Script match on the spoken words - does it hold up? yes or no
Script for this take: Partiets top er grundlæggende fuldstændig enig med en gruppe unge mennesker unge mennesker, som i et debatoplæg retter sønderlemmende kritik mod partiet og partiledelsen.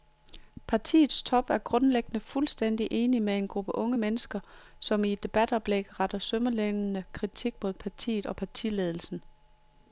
no